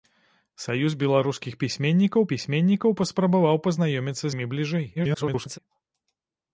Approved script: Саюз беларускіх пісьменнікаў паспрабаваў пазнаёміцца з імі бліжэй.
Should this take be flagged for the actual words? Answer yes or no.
yes